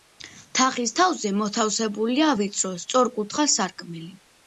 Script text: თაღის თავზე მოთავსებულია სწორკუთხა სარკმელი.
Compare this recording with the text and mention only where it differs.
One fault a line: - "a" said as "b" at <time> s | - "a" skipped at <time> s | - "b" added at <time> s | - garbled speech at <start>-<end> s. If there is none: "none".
- "ვიწრო" added at 2.4 s